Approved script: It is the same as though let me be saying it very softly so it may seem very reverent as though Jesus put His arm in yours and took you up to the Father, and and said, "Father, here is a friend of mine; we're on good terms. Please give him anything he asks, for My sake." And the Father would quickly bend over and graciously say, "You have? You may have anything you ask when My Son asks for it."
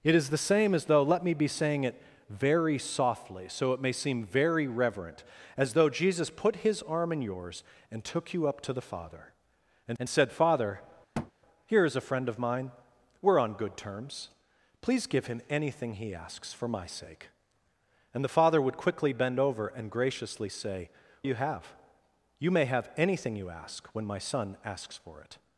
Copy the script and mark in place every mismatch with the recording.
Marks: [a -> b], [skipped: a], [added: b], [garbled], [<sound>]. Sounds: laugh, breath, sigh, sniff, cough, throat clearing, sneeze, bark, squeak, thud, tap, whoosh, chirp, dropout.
It is the same as though let me be saying it very softly so it may seem very reverent as though Jesus put His arm in yours and took you up to the Father, and and said, "Father, [thud] here is a friend of mine; we're on good terms. Please give him anything he asks, for My sake." And the Father would quickly bend over and graciously say, "You have? You may have anything you ask when My Son asks for it."